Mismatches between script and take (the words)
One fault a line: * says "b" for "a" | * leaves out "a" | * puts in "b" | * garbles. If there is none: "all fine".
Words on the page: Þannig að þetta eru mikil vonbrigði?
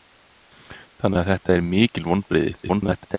* garbles